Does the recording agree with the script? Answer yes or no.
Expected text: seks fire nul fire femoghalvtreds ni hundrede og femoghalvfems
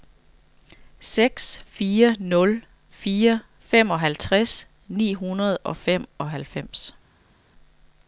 yes